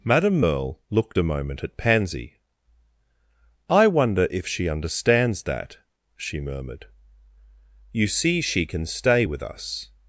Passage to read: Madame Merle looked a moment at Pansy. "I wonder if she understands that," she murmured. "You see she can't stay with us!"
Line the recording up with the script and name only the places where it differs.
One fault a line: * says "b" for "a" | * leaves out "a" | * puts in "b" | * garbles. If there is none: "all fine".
* says "can" for "can't"